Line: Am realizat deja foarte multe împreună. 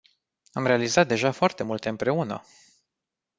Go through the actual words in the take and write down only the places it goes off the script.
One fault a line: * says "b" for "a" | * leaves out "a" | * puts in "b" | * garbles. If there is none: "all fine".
all fine